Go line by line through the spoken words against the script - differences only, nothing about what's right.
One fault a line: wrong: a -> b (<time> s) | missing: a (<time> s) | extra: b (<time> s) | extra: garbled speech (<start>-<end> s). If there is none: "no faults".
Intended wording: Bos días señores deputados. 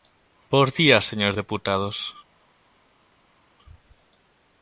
no faults